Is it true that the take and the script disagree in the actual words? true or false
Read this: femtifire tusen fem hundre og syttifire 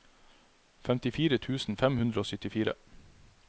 false